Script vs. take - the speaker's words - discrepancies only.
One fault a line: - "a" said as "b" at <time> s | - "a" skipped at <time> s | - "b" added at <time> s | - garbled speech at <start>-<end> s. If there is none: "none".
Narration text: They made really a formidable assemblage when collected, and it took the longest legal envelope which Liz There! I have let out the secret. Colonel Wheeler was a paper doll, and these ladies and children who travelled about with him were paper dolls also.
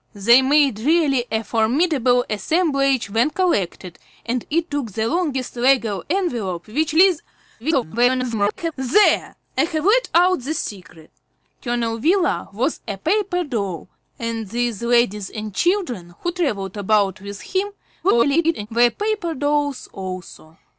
- garbled speech at 7.6-8.7 s
- garbled speech at 18.0-18.7 s